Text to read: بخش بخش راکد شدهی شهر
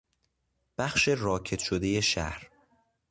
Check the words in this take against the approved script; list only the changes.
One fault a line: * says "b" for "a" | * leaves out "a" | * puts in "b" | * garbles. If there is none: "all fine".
* leaves out "بخش"